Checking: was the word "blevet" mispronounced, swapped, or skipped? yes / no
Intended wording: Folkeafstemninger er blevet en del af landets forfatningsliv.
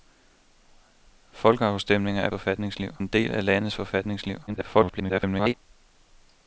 yes